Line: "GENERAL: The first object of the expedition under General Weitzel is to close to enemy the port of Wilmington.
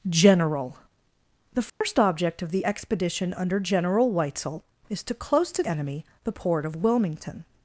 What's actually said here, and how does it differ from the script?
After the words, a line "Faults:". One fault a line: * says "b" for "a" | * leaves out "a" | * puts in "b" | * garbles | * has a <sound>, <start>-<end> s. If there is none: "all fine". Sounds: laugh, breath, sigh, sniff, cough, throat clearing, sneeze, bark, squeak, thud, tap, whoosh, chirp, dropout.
"GENERAL: The first object of the expedition under General Weitzel is to close to enemy the port of Wilmington.
Faults:
* has a dropout, 1.7-1.8 s